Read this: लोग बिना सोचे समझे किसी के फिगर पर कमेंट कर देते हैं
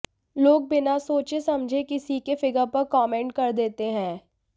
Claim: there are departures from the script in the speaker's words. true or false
false